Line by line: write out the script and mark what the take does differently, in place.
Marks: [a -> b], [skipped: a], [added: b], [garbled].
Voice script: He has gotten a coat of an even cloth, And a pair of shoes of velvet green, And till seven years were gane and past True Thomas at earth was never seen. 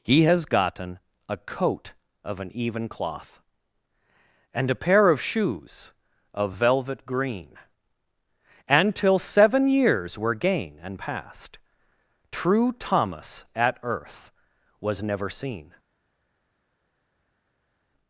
He has gotten a coat of an even cloth, And a pair of shoes of velvet green, And till seven years were gane and past True Thomas at earth was never seen.